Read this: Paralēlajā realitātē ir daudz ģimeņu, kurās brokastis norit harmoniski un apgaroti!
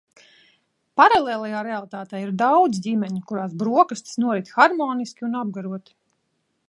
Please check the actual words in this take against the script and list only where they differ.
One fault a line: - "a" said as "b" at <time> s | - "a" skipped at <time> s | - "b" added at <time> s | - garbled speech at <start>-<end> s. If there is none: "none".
none